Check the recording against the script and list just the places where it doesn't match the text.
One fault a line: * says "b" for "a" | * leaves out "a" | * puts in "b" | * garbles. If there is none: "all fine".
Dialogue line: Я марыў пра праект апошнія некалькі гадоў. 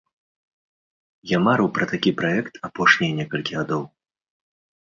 * puts in "такі"